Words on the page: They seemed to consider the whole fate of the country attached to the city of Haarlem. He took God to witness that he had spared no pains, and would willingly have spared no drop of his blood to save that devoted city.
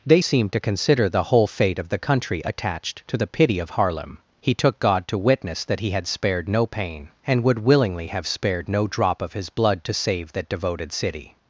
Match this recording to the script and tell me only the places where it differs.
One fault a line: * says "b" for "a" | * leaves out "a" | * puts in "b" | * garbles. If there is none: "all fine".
* says "pity" for "city"
* says "pain" for "pains"